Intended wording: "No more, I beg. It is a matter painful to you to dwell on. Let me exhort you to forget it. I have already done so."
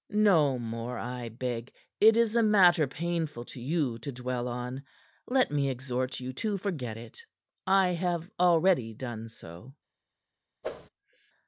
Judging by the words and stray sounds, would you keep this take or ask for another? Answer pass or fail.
fail